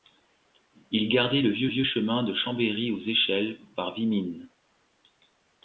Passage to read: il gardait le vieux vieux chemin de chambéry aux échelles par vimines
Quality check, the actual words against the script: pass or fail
pass